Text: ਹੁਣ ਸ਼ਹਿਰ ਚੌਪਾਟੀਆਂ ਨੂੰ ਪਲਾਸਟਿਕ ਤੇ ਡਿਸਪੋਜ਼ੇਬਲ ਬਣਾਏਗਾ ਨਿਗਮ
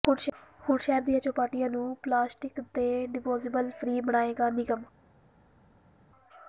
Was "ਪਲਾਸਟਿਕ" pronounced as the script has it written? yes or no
yes